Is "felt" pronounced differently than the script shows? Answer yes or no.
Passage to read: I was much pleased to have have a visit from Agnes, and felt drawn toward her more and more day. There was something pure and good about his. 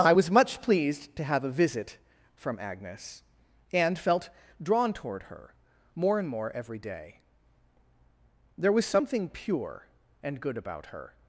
no